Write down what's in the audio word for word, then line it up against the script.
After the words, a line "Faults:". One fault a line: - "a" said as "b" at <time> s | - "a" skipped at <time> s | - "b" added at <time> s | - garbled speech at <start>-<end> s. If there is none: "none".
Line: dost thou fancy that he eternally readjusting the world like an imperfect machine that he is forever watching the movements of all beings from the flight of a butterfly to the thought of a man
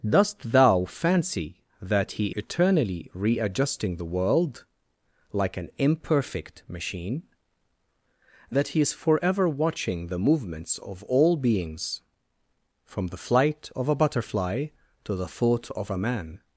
dost thou fancy that he eternally readjusting the world like an imperfect machine that he is forever watching the movements of all beings from the flight of a butterfly to the thought of a man
Faults:
none